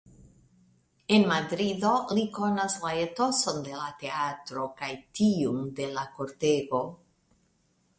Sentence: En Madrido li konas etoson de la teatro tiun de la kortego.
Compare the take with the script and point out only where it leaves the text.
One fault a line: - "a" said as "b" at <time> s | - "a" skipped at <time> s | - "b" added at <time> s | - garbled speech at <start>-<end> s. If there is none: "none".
- "la" added at 2.8 s
- "kaj" added at 4.8 s